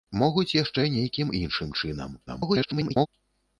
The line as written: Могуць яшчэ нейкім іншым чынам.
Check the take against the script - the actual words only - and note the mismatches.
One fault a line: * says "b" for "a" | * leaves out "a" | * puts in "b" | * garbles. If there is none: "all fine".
* garbles